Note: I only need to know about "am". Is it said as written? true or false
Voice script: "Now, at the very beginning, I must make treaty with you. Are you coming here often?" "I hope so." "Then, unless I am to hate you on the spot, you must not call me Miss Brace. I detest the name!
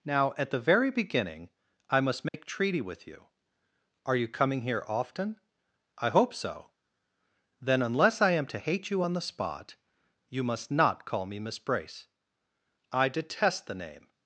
true